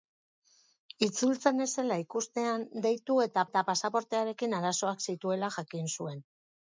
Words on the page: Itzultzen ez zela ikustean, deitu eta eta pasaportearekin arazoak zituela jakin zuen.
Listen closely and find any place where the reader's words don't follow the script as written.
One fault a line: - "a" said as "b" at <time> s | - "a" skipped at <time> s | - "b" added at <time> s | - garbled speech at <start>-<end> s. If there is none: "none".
none